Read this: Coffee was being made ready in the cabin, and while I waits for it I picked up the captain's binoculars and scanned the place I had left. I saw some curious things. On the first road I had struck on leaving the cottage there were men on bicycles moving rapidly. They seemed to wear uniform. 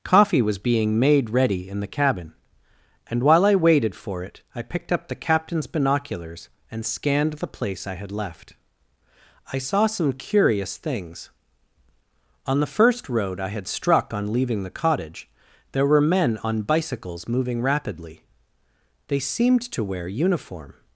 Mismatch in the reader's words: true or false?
true